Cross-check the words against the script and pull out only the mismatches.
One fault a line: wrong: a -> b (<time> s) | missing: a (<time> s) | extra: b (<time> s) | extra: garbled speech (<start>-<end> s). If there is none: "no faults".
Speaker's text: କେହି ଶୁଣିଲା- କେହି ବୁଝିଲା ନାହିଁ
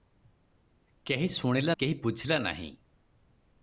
no faults